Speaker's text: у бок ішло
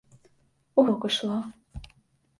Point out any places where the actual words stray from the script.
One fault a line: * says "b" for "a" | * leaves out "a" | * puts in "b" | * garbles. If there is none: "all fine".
all fine